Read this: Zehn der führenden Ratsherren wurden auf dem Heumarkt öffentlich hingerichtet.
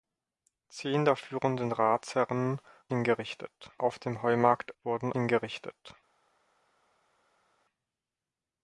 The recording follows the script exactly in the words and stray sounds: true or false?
false